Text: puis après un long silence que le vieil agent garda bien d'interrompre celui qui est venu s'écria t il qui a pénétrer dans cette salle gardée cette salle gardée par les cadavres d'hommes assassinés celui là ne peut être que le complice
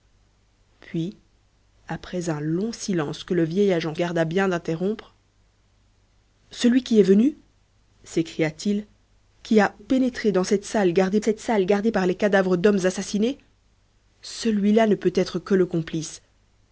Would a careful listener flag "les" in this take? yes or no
no